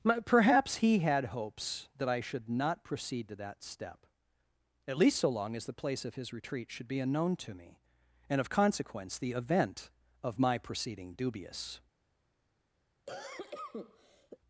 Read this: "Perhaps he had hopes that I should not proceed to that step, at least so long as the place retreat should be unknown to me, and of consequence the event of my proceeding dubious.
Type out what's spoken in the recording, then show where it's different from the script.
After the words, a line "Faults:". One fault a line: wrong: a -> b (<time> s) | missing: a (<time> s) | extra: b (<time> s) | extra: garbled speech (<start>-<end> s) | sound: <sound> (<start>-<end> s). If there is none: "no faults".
"Perhaps he had hopes that I should not proceed to that step, at least so long as the place of his retreat should be unknown to me, and of consequence the event of my proceeding dubious.
Faults:
extra: of his (6.0 s)
sound: cough (13.1-14.4 s)